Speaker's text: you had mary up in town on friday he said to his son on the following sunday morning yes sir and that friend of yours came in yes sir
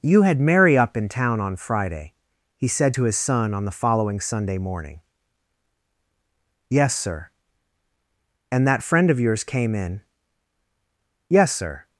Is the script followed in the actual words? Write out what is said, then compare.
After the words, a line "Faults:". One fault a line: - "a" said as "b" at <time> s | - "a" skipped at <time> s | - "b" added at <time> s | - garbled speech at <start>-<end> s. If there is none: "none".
you had mary up in town on friday he said to his son on the following sunday morning yes sir and that friend of yours came in yes sir
Faults:
none